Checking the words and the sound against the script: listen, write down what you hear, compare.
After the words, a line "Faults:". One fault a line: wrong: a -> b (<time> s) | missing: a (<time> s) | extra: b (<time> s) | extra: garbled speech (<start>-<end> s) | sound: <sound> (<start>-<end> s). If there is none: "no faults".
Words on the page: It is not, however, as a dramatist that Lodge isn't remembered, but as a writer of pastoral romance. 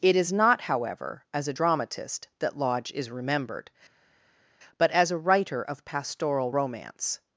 It is not, however, as a dramatist that Lodge is remembered, but as a writer of pastoral romance.
Faults:
wrong: isn't -> is (2.9 s)